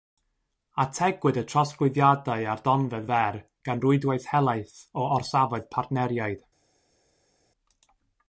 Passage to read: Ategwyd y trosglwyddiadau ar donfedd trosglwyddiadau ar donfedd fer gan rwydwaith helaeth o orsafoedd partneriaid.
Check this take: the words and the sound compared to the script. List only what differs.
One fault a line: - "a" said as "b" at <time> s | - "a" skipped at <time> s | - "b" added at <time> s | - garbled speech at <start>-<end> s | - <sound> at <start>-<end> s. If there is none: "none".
- "trosglwyddiadau ar donfedd" skipped at 3.0 s